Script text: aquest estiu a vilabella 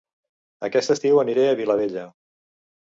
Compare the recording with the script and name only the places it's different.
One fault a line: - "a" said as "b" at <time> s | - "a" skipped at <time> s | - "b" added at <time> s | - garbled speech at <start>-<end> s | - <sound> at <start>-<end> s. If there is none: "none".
- "aniré" added at 1.2 s